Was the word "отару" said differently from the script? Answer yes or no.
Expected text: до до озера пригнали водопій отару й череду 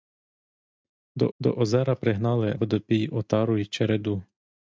no